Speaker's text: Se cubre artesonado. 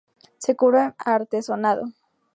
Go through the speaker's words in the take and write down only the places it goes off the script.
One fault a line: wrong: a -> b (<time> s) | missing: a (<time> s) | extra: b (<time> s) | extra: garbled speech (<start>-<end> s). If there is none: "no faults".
no faults